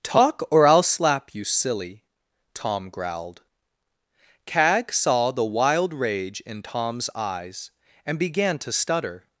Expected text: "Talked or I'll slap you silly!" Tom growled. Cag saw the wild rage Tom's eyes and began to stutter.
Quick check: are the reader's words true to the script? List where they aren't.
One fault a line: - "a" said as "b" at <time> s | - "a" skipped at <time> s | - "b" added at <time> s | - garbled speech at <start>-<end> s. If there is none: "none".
- "Talked" said as "Talk" at 0.0 s
- "in" added at 6.4 s